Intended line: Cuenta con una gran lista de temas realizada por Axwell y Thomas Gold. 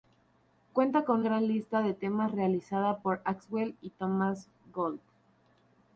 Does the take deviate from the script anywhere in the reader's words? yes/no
yes